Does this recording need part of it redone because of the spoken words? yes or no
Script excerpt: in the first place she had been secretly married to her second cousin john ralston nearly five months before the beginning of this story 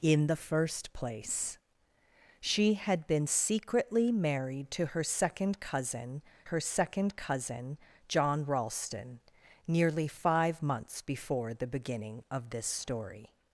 yes